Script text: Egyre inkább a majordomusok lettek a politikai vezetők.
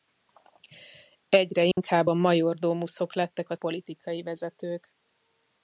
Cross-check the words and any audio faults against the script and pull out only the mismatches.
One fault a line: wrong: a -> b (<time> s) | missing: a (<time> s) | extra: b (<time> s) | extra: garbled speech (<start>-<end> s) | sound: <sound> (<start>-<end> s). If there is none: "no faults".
sound: dropout (1.7-1.8 s)